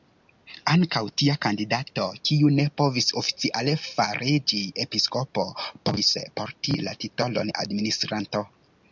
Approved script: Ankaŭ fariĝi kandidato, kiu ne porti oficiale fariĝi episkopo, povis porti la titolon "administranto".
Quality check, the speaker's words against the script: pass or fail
fail